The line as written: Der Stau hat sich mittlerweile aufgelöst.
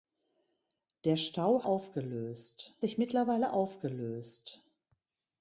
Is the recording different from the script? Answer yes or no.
yes